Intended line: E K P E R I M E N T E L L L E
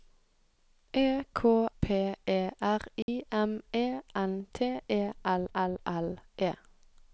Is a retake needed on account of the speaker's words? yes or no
no